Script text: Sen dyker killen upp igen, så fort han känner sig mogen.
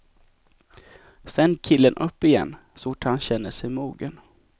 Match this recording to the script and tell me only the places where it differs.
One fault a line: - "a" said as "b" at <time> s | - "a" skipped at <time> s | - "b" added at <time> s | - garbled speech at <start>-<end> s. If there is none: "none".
- "dyker" skipped at 1.6 s